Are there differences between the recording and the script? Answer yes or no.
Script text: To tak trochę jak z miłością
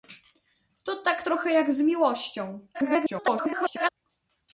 yes